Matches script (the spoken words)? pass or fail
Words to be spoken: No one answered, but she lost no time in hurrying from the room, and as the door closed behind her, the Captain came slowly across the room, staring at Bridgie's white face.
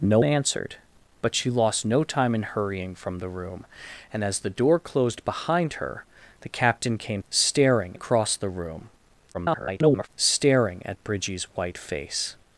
fail